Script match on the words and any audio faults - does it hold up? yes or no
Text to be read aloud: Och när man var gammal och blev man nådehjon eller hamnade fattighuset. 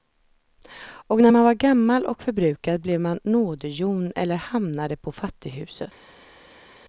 no